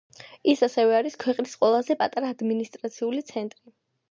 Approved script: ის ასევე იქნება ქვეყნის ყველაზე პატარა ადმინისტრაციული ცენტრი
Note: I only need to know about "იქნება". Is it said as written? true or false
false